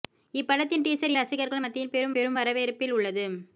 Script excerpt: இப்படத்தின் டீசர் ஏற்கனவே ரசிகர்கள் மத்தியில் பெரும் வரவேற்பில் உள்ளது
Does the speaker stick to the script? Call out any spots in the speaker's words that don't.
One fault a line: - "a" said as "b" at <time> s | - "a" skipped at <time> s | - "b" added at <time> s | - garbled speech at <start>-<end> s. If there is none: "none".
- "ஏற்கனவே" skipped at 1.1 s
- "பெரும்" added at 2.2 s